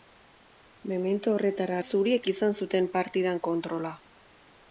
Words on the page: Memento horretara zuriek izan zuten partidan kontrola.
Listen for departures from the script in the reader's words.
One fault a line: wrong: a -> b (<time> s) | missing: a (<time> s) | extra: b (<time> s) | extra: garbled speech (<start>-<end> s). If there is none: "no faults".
no faults